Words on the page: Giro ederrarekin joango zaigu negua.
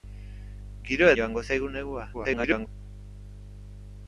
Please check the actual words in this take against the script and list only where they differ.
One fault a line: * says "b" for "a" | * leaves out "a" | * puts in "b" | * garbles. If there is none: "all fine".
* leaves out "ederrarekin"
* garbles